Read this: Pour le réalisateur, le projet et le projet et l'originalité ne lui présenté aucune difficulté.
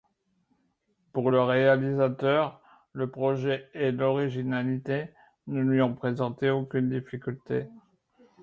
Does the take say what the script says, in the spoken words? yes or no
no